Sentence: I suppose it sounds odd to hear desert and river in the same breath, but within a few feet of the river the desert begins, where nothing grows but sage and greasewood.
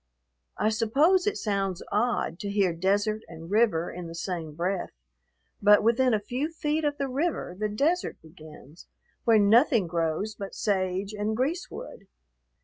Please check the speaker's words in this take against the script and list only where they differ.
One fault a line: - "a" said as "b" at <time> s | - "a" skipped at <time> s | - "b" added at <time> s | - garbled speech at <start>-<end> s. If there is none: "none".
none